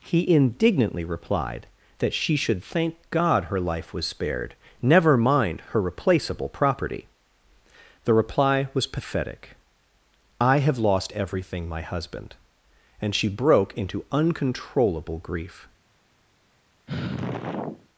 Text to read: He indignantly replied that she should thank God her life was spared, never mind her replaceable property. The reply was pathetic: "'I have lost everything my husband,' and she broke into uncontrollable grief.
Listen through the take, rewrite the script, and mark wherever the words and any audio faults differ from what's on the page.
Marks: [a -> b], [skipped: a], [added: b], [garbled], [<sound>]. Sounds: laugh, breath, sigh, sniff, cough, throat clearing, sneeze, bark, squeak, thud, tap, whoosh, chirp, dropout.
He indignantly replied that she should thank God her life was spared, never mind her replaceable property. The reply was pathetic: "'I have lost everything my husband,' and she broke into uncontrollable grief. [sigh]